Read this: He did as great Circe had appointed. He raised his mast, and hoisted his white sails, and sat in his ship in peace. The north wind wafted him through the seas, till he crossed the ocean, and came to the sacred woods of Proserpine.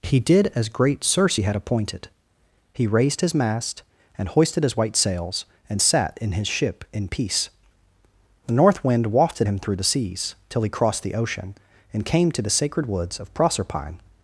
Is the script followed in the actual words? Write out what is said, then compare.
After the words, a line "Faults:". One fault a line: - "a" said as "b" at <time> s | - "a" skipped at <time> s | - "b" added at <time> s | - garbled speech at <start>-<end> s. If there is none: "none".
He did as great Circe had appointed. He raised his mast, and hoisted his white sails, and sat in his ship in peace. The north wind wafted him through the seas, till he crossed the ocean, and came to the sacred woods of Proserpine.
Faults:
none